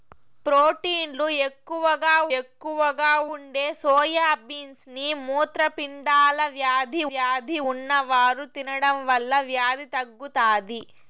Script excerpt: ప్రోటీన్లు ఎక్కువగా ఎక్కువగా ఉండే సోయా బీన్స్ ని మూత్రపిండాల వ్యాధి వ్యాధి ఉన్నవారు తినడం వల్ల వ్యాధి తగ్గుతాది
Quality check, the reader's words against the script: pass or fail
pass